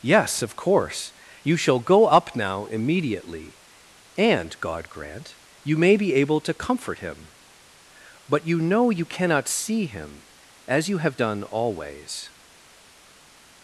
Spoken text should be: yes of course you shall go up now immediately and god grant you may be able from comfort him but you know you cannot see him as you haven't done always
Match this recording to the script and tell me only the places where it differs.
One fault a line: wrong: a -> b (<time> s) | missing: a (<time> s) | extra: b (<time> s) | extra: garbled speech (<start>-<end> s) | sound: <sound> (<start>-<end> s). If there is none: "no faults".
wrong: from -> to (6.4 s)
wrong: haven't -> have (11.0 s)